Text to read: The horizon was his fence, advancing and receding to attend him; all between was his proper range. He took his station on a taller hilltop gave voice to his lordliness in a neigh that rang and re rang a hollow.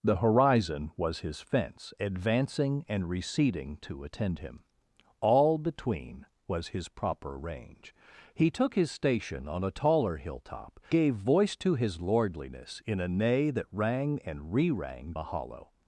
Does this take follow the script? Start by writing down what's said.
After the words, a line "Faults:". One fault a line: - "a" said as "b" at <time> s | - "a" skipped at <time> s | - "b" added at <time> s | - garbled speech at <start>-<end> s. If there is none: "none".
The horizon was his fence, advancing and receding to attend him; all between was his proper range. He took his station on a taller hilltop gave voice to his lordliness in a neigh that rang and re rang a hollow.
Faults:
none